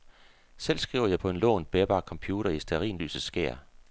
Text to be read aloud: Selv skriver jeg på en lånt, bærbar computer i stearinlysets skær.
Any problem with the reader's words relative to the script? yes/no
no